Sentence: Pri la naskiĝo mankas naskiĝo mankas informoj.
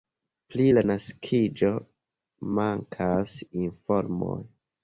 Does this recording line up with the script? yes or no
no